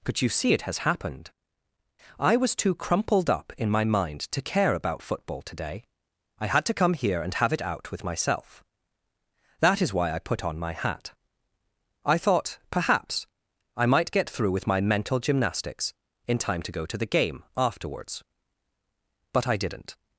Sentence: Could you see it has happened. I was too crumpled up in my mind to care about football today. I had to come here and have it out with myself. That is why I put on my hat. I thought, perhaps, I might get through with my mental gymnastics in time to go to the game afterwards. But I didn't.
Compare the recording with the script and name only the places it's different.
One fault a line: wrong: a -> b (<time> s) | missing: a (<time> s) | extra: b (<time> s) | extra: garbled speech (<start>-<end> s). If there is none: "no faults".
no faults